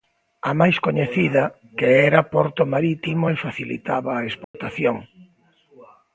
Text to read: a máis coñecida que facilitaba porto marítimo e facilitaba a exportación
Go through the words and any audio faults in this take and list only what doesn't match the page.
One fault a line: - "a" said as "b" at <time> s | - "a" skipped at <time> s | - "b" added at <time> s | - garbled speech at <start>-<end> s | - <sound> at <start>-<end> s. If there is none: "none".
- "facilitaba" said as "era" at 2.1 s
- dropout at 4.4-4.5 s